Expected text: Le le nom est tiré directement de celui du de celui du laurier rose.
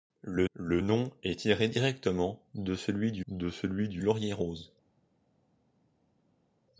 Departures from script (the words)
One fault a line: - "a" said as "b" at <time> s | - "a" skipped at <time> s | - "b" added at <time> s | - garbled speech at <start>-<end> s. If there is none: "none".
none